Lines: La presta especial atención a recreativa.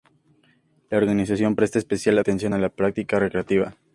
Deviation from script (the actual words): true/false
true